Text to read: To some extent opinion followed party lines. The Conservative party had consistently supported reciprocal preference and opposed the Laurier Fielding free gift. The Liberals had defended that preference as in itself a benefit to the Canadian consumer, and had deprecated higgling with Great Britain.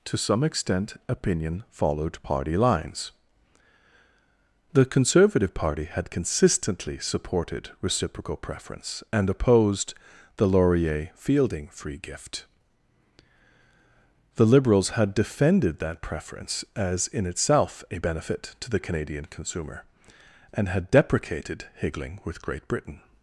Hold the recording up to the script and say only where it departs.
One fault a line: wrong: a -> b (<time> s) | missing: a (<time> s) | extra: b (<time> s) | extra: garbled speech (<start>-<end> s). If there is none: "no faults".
no faults